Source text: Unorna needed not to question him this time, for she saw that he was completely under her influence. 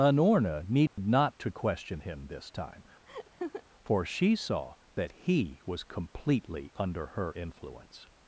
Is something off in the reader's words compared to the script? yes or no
no